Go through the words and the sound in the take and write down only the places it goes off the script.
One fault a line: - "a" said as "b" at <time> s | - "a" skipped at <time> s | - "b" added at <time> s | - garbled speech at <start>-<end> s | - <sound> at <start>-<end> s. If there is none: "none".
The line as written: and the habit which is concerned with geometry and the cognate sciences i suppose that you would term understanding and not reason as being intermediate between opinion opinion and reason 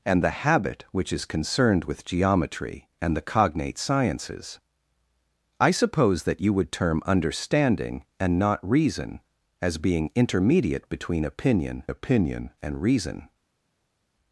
none